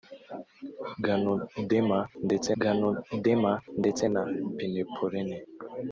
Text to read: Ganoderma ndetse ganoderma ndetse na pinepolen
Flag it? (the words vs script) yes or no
no